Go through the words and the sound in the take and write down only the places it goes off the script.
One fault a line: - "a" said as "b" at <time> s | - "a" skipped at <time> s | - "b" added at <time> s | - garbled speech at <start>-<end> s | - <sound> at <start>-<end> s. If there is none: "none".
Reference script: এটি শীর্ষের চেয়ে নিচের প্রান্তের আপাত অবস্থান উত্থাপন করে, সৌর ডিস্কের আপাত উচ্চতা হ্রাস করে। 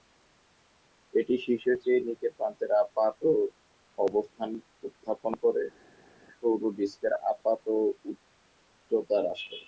none